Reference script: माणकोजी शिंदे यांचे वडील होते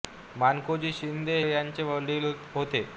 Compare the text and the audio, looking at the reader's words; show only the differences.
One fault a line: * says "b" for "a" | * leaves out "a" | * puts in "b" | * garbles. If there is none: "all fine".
all fine